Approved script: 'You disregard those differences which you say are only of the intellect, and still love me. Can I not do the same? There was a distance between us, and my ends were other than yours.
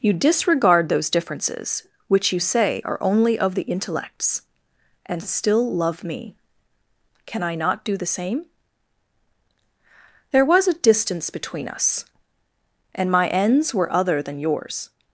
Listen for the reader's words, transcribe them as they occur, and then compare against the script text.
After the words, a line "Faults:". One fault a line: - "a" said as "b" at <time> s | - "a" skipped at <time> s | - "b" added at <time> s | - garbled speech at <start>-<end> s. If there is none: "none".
'You disregard those differences which you say are only of the intellects, and still love me. Can I not do the same? There was a distance between us, and my ends were other than yours.
Faults:
- "intellect" said as "intellects" at 3.6 s